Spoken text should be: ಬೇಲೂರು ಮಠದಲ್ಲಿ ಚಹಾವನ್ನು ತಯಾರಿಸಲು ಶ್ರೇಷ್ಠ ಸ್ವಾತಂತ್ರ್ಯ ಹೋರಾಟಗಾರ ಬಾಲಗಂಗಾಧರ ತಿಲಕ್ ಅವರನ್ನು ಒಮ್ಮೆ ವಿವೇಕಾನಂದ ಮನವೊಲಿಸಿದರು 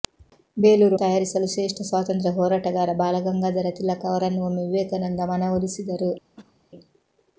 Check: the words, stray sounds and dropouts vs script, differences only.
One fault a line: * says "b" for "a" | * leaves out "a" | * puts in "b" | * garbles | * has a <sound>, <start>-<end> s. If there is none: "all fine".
* leaves out "ಮಠದಲ್ಲಿ ಚಹಾವನ್ನು"
* has a cough, 6.4-6.6 s